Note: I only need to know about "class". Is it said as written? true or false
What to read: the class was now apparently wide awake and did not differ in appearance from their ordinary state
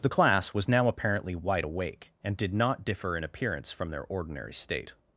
true